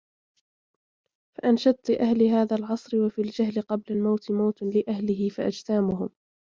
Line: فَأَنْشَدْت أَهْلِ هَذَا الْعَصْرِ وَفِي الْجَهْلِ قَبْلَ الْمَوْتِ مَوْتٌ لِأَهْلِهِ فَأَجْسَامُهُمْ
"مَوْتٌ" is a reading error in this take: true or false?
false